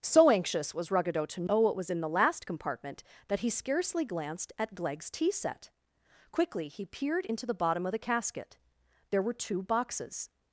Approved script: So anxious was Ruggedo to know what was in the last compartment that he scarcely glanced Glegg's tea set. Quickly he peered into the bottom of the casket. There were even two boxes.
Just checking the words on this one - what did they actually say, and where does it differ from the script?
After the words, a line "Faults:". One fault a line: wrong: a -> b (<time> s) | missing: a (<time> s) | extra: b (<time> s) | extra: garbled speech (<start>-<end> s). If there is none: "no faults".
So anxious was Ruggedo to know what was in the last compartment that he scarcely glanced at Glegg's tea set. Quickly he peered into the bottom of the casket. There were two boxes.
Faults:
extra: at (4.6 s)
missing: even (9.3 s)